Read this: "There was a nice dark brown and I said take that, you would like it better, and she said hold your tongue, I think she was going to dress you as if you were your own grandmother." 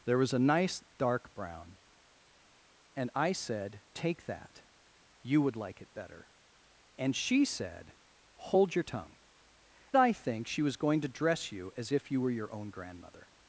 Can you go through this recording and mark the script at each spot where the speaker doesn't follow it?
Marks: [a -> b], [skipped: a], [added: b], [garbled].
"There was a nice dark brown and I said take that, you would like it better, and she said hold your tongue, I think she was going to dress you as if you were your own grandmother."